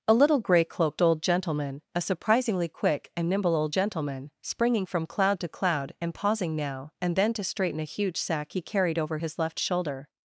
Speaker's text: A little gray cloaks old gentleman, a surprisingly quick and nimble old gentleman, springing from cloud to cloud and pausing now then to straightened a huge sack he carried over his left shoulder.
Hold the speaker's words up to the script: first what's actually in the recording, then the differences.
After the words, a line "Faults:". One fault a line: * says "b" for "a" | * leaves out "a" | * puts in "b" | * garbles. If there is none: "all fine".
A little gray cloaked old gentleman, a surprisingly quick and nimble old gentleman, springing from cloud to cloud and pausing now and then to straighten a huge sack he carried over his left shoulder.
Faults:
* says "cloaked" for "cloaks"
* puts in "and"
* says "straighten" for "straightened"